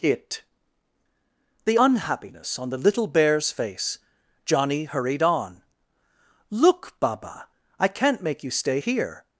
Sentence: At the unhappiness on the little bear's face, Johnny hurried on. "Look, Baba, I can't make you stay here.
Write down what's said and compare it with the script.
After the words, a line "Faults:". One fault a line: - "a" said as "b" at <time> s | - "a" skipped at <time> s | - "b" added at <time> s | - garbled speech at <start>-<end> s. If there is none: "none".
It the unhappiness on the little bear's face, Johnny hurried on. "Look, Baba, I can't make you stay here.
Faults:
- "At" said as "It" at 0.0 s